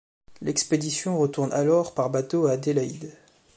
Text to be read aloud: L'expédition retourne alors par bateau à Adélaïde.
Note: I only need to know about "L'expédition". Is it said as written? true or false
true